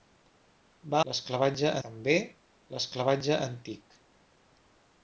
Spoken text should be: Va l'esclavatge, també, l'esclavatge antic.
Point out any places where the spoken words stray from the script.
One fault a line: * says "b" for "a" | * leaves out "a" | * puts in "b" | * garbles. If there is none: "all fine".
all fine